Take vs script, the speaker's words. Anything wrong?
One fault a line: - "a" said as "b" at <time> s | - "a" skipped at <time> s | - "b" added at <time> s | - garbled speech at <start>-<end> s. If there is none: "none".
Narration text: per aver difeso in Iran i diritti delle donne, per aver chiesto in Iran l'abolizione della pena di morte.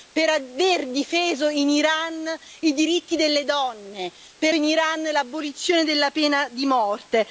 - "aver chiesto" skipped at 4.5 s